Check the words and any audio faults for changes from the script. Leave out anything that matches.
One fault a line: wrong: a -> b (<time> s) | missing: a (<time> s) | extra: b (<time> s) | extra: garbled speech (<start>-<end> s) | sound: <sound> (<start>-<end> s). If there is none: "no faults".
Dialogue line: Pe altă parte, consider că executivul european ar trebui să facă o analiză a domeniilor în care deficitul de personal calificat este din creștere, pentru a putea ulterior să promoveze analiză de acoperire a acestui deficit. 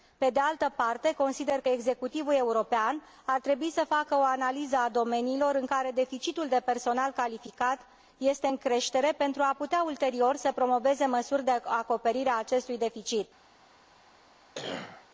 extra: de (0.3 s)
wrong: din -> în (8.4 s)
wrong: analiză -> măsuri (11.0 s)
sound: cough (14.5-15.1 s)